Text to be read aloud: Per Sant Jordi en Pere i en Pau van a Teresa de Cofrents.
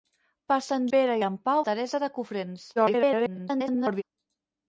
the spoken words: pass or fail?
fail